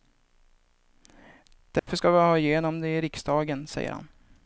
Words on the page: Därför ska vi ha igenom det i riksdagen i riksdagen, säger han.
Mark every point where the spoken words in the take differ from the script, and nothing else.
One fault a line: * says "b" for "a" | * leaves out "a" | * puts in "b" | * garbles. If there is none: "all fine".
* leaves out "i riksdagen"